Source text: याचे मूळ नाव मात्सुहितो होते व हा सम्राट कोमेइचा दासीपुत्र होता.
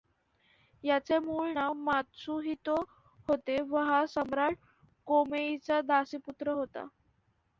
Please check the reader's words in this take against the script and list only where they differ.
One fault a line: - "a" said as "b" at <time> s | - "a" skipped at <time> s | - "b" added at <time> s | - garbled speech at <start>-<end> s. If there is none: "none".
none